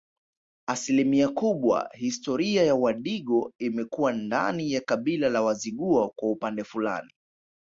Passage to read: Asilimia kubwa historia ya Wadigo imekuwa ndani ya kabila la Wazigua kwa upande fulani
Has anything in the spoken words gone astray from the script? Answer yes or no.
no